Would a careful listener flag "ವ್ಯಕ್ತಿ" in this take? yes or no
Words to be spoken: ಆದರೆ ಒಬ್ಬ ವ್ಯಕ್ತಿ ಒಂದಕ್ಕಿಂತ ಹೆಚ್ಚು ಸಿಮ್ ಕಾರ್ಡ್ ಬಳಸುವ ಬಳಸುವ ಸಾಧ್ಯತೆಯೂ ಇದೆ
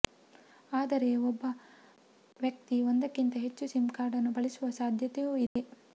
no